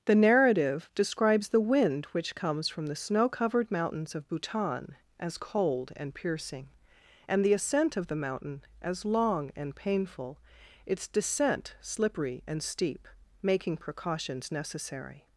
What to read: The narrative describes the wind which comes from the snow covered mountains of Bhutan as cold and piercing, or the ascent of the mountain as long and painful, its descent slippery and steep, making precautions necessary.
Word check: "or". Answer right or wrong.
wrong